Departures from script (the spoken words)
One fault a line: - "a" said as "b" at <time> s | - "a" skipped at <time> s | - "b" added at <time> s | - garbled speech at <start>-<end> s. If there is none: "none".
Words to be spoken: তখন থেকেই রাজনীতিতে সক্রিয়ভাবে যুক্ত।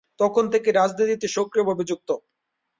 none